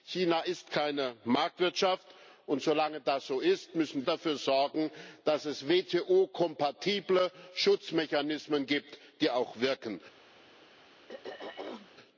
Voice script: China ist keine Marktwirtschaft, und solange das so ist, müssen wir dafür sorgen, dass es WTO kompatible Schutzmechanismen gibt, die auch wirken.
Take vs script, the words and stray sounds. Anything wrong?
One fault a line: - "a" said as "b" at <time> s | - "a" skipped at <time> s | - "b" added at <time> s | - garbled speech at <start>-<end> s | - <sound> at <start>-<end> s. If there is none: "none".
- "wir" skipped at 4.1 s
- throat clearing at 11.1-11.9 s